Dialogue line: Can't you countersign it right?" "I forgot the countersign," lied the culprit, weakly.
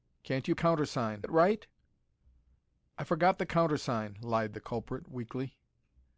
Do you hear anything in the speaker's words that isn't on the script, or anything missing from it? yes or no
no